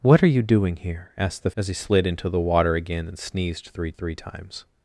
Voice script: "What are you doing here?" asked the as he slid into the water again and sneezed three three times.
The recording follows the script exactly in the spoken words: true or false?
true